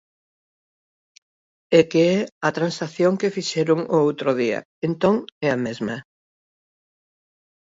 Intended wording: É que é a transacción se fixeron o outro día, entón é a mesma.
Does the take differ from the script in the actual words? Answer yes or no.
yes